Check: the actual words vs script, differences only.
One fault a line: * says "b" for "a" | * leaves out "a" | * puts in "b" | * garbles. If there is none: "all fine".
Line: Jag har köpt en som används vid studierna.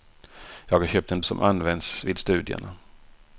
all fine